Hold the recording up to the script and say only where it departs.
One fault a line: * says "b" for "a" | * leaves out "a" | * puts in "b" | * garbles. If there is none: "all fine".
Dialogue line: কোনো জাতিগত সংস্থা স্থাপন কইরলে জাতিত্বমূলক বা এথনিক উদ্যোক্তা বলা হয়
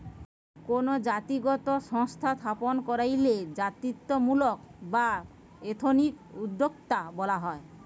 all fine